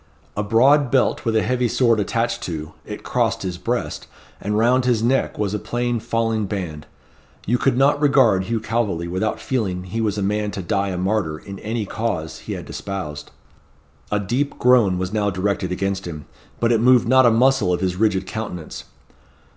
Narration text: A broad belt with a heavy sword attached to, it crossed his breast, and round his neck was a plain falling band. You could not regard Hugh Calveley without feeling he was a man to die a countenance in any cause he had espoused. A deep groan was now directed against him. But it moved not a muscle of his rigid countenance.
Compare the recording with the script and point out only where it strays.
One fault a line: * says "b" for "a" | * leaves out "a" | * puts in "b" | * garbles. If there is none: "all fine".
* says "martyr" for "countenance"